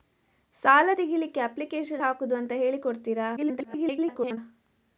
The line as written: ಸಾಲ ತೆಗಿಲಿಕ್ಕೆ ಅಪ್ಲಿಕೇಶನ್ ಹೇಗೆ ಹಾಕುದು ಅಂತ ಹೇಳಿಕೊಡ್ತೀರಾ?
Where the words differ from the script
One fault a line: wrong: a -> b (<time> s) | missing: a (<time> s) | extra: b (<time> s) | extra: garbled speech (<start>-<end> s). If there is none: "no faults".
missing: ಹೇಗೆ (2.0 s)
extra: garbled speech (3.4-4.4 s)